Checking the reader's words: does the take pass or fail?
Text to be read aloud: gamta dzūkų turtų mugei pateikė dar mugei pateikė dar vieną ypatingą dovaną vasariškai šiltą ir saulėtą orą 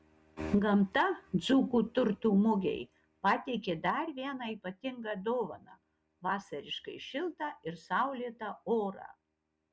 fail